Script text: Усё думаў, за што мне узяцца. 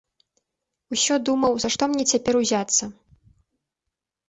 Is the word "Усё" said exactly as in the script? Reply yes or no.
yes